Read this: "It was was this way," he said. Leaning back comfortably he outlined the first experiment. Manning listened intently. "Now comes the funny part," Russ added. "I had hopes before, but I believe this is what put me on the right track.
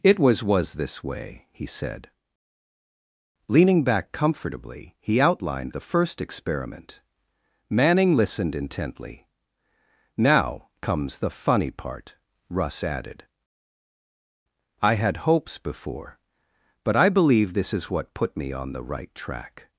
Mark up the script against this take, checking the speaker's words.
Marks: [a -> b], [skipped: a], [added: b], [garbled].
"It was was this way," he said. Leaning back comfortably he outlined the first experiment. Manning listened intently. "Now comes the funny part," Russ added. "I had hopes before, but I believe this is what put me on the right track.